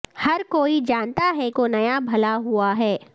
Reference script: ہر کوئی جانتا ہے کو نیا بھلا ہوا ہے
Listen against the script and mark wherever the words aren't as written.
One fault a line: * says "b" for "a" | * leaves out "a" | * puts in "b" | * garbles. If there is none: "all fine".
all fine